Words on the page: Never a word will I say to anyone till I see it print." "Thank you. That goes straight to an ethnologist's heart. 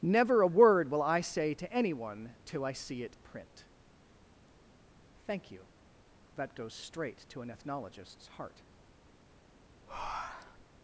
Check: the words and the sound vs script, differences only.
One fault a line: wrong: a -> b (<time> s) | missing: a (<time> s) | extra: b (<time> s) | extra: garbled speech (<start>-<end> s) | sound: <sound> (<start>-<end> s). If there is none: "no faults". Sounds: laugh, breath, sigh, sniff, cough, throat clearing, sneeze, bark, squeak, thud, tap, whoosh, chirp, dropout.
sound: breath (9.9-10.7 s)